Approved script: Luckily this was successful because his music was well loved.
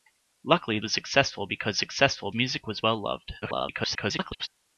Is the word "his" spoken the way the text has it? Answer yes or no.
no